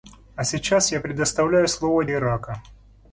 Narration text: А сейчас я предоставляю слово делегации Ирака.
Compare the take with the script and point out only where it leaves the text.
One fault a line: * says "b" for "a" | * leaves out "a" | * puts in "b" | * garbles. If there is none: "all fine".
* leaves out "делегации"